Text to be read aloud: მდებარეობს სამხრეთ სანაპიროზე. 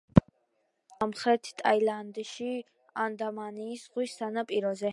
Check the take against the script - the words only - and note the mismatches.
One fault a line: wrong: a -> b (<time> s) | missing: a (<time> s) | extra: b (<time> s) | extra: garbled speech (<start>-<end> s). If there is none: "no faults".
extra: ტაილანდში ანდამანის ზღვის (1.6 s)